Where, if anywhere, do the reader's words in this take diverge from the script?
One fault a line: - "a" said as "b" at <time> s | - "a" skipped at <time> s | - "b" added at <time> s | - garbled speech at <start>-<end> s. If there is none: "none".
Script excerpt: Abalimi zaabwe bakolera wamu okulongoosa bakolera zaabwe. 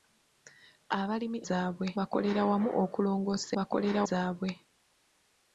none